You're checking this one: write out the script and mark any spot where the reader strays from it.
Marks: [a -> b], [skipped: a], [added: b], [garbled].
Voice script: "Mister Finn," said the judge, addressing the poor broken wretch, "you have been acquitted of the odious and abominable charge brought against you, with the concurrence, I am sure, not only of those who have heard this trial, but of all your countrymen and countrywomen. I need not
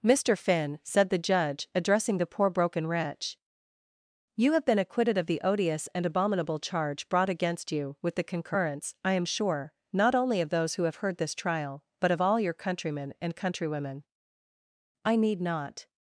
"Mister Finn," said the judge, addressing the poor broken wretch, "you have been acquitted of the odious and abominable charge brought against you, with the concurrence, I am sure, not only of those who have heard this trial, but of all your countrymen and countrywomen. I need not